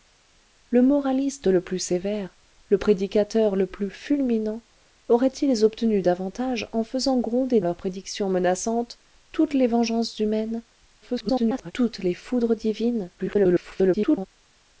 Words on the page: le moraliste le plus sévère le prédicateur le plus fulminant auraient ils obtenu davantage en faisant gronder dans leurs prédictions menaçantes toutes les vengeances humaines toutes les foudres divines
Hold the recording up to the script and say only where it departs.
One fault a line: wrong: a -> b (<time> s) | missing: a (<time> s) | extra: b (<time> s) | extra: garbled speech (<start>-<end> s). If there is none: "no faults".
missing: dans (7.6 s)
extra: garbled speech (11.0-11.7 s)
extra: garbled speech (13.2-14.3 s)